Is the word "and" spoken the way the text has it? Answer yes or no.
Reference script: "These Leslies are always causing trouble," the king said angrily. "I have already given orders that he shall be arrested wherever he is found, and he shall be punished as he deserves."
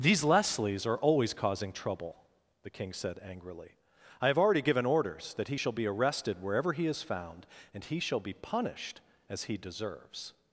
yes